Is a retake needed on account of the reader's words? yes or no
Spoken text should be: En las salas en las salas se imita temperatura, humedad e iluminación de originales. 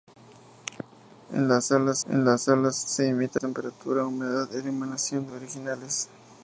no